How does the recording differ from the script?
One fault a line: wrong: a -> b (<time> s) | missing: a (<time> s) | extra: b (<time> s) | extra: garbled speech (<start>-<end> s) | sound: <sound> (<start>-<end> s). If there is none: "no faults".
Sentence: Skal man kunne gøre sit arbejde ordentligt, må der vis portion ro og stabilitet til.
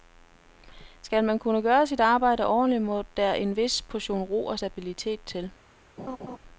extra: en (3.3 s)
sound: laugh (6.0-6.4 s)